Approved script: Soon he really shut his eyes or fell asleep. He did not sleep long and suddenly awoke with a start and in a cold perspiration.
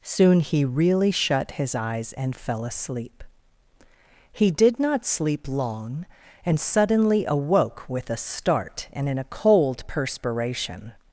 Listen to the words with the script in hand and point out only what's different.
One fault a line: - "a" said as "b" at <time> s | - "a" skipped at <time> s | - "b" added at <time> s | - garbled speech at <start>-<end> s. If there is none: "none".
- "or" said as "and" at 2.1 s